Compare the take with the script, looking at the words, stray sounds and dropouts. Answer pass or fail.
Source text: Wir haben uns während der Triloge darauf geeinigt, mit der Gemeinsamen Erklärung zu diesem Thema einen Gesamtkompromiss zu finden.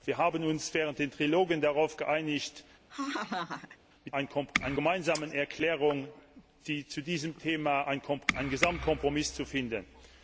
fail